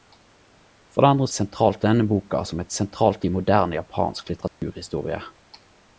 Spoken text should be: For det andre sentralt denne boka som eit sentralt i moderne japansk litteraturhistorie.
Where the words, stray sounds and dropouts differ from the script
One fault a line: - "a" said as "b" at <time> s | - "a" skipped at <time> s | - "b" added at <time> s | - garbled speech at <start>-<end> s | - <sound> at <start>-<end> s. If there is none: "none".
- dropout at 4.5-4.6 s